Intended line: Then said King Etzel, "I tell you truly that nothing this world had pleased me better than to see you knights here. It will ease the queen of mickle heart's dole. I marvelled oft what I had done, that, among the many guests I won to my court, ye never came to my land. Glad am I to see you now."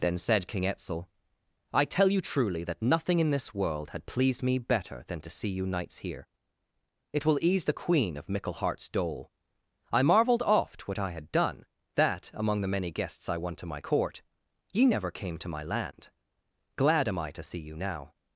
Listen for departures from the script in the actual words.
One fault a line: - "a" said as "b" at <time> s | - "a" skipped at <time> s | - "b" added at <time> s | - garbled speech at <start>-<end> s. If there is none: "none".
- "in" added at 3.2 s